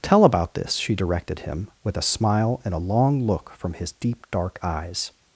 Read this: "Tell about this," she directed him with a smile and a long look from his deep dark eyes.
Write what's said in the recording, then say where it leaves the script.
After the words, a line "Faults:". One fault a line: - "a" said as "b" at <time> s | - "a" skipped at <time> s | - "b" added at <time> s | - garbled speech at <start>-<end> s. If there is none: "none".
"Tell about this," she directed him with a smile and a long look from his deep dark eyes.
Faults:
none